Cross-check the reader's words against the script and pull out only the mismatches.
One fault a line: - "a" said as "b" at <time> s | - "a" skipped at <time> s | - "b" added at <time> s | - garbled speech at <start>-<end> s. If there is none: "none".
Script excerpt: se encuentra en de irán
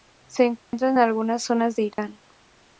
- "algunas zonas" added at 1.0 s